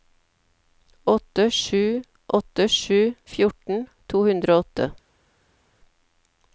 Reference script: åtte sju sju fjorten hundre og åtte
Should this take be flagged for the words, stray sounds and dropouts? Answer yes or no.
yes